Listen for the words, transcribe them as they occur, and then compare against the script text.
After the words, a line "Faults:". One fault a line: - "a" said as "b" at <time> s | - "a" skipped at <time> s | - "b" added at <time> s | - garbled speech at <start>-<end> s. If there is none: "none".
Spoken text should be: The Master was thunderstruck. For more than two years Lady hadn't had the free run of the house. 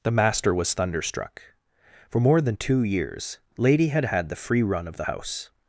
The Master was thunderstruck. For more than two years Lady had had the free run of the house.
Faults:
- "hadn't" said as "had" at 3.9 s